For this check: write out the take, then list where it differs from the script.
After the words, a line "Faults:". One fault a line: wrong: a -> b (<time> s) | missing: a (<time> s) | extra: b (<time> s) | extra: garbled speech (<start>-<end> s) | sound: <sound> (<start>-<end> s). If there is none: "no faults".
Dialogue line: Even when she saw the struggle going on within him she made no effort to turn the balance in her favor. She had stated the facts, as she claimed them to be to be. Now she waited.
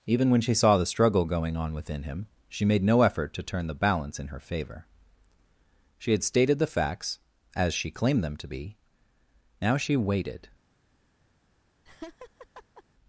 Even when she saw the struggle going on within him she made no effort to turn the balance in her favor. She had stated the facts, as she claimed them to be. Now she waited.
Faults:
missing: to be (8.8 s)
sound: laugh (11.9-12.8 s)